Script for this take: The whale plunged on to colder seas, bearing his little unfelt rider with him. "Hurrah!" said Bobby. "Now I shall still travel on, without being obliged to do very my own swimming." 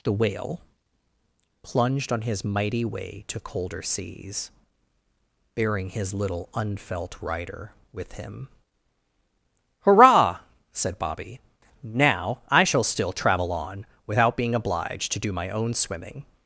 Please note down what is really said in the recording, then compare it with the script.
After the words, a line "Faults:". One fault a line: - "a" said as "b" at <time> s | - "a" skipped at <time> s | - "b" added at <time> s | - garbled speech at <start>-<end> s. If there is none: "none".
The whale plunged on his mighty way to colder seas, bearing his little unfelt rider with him. "Hurrah!" said Bobby. "Now I shall still travel on, without being obliged to do my own swimming."
Faults:
- "his mighty way" added at 2.2 s
- "very" skipped at 15.3 s